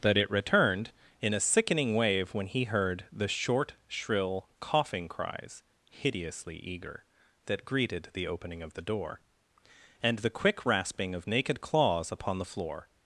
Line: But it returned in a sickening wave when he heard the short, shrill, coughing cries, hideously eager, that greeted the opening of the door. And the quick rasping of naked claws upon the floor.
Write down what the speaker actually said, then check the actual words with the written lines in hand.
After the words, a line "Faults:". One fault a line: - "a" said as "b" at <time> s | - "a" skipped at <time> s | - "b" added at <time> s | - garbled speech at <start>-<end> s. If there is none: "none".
That it returned in a sickening wave when he heard the short, shrill, coughing cries, hideously eager, that greeted the opening of the door. And the quick rasping of naked claws upon the floor.
Faults:
- "But" said as "That" at 0.0 s